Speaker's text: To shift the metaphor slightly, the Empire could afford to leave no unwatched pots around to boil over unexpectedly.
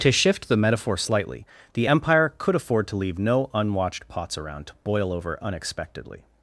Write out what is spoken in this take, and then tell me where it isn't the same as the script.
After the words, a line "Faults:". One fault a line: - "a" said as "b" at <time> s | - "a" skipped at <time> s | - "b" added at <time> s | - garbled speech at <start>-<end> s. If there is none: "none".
To shift the metaphor slightly, the Empire could afford to leave no unwatched pots around to boil over unexpectedly.
Faults:
none